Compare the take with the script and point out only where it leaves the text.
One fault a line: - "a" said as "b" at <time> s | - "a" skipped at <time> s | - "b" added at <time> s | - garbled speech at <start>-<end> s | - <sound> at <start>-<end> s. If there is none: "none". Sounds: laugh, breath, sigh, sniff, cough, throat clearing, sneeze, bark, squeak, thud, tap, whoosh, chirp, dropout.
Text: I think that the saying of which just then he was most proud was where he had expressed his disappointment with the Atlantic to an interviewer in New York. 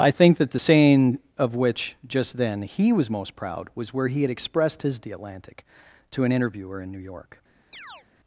- "disappointment with" skipped at 5.0 s
- chirp at 7.7-8.1 s